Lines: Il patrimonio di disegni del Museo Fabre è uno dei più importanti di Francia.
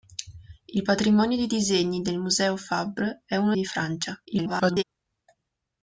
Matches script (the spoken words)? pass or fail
fail